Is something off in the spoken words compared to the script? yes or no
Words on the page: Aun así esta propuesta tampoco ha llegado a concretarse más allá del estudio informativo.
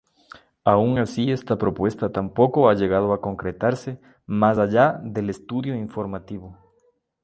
no